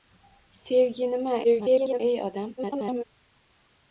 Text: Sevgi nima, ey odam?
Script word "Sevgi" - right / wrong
right